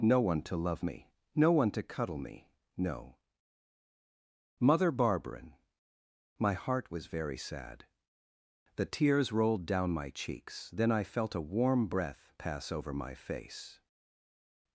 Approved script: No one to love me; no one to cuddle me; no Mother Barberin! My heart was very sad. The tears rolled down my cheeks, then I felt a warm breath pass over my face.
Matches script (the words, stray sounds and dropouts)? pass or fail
pass